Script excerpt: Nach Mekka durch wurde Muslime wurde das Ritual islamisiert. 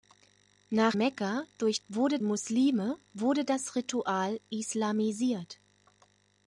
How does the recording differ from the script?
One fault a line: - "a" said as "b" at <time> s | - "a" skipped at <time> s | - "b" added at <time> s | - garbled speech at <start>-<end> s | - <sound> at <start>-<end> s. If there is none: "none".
none